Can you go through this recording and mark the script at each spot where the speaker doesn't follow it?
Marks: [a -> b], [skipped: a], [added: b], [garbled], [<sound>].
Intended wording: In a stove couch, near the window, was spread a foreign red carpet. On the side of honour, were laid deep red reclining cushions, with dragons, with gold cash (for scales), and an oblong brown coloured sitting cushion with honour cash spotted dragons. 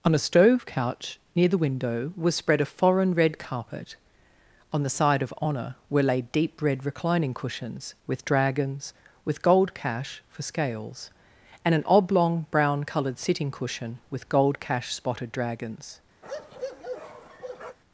[In -> On] a stove couch, near the window, was spread a foreign red carpet. On the side of honour, were laid deep red reclining cushions, with dragons, with gold cash (for scales), and an oblong brown coloured sitting cushion with [honour -> gold] cash spotted dragons. [bark]